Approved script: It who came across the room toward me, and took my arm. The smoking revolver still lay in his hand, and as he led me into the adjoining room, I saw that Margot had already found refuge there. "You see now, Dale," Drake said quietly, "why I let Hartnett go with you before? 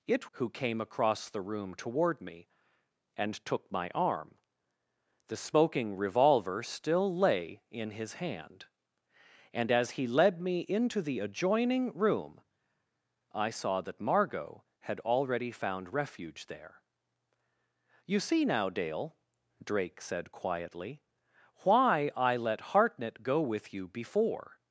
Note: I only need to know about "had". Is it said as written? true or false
true